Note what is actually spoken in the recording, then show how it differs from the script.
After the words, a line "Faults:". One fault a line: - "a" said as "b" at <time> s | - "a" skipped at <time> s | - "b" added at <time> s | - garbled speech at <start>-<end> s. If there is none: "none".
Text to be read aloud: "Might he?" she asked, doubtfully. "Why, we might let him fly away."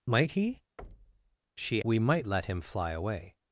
"Might he?" she we might let him fly away."
Faults:
- "asked doubtfully Why" skipped at 1.8 s